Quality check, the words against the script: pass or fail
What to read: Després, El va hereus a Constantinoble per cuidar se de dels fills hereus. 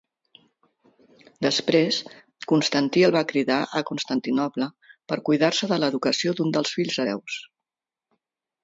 fail